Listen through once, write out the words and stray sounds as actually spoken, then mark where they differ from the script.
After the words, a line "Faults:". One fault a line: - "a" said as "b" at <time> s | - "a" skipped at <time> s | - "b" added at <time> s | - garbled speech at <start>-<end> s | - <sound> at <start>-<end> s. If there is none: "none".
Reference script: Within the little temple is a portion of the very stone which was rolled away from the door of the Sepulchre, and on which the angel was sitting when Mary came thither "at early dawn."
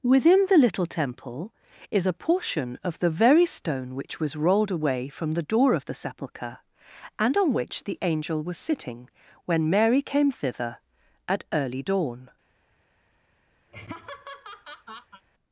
Within the little temple is a portion of the very stone which was rolled away from the door of the Sepulchre, and on which the angel was sitting when Mary came thither "at early dawn."
Faults:
- laugh at 13.7-15.2 s